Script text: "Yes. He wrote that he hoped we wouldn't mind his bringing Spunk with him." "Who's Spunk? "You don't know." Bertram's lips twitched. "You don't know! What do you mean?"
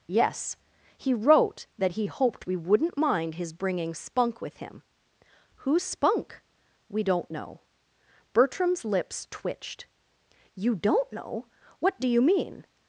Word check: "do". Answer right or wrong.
right